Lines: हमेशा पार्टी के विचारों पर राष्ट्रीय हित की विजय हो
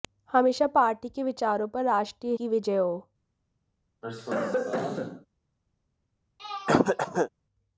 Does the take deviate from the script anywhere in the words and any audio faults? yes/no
yes